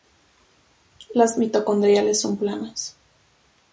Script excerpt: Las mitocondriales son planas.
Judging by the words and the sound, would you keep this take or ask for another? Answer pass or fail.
pass